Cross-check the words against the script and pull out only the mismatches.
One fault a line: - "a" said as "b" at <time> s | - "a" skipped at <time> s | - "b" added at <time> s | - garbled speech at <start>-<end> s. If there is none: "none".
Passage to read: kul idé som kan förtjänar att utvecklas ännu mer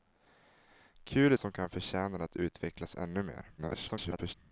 - "idé" skipped at 1.3 s
- garbled speech at 3.6-4.3 s